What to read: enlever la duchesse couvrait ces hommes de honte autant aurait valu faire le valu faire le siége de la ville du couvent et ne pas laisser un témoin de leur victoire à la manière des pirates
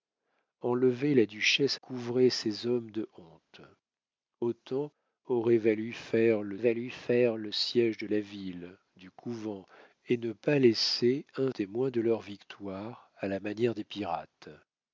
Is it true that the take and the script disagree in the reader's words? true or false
false